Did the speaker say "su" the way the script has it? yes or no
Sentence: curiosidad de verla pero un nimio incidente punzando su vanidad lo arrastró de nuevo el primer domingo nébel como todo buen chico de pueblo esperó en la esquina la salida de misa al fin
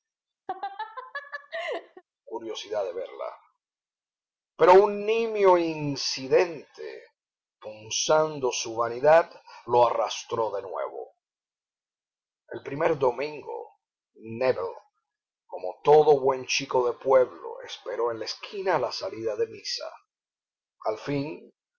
yes